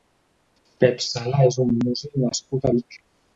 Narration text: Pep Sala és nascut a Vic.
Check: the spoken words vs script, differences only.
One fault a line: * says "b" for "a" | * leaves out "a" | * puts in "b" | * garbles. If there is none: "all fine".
* puts in "un músic"